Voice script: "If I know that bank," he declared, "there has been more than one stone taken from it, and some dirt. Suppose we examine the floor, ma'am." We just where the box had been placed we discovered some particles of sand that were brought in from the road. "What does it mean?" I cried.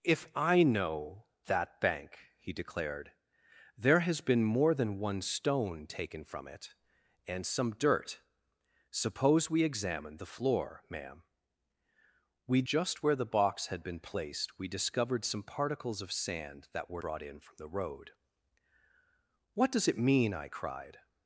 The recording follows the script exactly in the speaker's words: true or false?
true